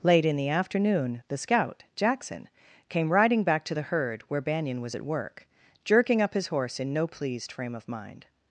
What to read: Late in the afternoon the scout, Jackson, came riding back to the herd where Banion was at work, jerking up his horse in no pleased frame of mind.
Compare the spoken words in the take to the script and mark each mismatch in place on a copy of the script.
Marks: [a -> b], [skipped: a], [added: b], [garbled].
Late in the afternoon the scout, Jackson, came riding back to the herd where Banion was at work, jerking up his horse in no pleased frame of mind.